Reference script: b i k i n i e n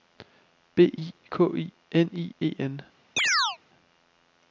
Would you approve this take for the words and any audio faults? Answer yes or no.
no